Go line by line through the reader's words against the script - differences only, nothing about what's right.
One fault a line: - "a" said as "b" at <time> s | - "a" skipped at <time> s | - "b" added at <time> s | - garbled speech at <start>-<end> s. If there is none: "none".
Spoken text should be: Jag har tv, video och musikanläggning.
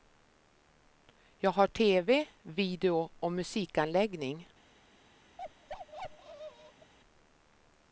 none